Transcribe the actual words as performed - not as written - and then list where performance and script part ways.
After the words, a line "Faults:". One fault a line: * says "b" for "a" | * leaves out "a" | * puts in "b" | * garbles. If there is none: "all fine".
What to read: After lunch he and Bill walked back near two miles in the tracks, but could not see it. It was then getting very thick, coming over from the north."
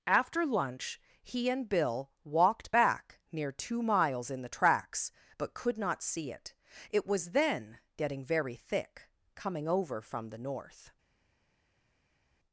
After lunch he and Bill walked back near two miles in the tracks, but could not see it. It was then getting very thick, coming over from the north."
Faults:
all fine